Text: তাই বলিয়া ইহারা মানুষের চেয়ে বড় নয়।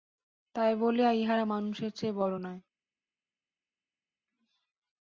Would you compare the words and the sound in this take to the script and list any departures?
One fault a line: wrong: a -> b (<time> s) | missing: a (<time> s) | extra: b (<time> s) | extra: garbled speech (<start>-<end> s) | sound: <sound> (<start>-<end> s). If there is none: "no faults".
no faults